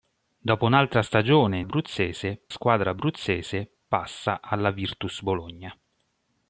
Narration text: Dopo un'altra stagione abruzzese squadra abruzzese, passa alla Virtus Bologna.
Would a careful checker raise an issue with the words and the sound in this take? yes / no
no